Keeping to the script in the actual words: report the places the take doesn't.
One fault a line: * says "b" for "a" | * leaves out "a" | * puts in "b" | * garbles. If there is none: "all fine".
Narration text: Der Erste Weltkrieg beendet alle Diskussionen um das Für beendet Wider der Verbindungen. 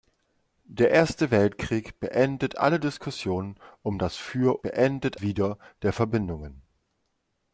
all fine